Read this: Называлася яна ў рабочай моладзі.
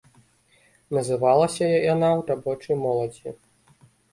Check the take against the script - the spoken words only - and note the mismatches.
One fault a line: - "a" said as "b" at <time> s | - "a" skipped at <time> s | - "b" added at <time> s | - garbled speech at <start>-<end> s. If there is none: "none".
none